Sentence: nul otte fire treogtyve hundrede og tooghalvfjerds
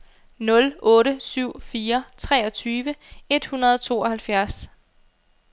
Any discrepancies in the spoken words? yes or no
yes